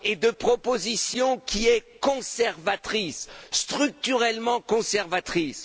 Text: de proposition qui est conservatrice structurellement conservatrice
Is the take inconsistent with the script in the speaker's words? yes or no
no